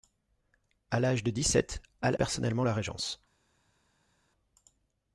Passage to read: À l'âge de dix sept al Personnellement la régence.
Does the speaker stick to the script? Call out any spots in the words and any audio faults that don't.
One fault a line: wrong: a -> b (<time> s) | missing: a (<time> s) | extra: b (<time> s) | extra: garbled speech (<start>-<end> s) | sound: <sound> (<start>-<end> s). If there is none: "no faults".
no faults